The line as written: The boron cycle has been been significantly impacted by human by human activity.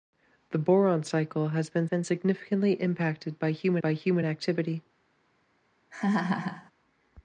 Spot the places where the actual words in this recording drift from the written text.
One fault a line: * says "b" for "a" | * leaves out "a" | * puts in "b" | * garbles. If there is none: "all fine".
all fine